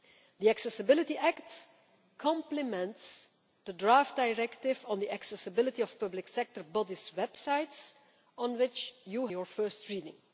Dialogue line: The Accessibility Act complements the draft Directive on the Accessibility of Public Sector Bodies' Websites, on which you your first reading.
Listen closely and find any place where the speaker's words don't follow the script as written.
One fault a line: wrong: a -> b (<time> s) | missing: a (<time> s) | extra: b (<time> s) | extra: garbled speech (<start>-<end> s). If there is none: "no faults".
no faults